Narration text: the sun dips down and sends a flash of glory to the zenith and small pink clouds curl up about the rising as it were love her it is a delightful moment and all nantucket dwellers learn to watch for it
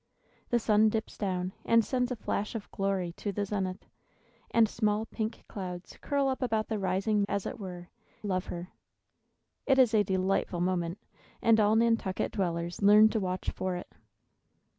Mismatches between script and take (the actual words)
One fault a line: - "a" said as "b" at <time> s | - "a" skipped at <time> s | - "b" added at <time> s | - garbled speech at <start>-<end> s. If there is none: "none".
none